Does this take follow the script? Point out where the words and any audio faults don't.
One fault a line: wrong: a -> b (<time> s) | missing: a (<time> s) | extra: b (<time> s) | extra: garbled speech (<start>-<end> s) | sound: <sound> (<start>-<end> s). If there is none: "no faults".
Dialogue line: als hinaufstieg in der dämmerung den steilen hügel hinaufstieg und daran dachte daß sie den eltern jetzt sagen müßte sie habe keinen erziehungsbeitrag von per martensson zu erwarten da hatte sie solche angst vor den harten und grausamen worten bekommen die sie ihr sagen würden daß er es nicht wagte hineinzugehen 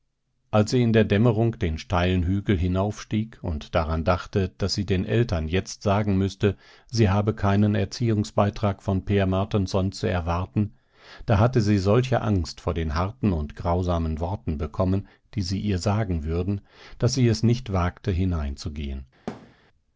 wrong: hinaufstieg -> sie (0.7 s)
wrong: er -> sie (17.1 s)
sound: thud (19.3-19.6 s)